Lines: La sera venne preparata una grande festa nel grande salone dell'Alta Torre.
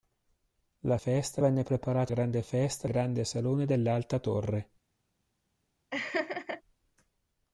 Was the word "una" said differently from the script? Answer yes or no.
yes